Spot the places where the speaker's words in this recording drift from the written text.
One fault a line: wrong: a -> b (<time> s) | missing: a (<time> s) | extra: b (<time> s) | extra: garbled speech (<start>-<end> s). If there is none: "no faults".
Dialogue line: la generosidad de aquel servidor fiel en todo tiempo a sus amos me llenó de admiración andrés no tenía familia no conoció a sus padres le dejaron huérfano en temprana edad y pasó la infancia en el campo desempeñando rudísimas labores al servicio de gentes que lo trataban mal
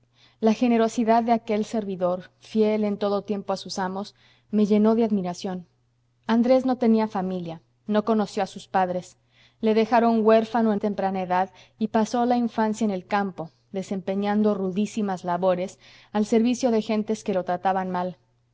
no faults